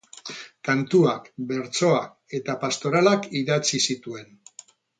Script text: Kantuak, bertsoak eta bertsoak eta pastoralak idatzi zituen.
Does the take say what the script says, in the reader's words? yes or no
no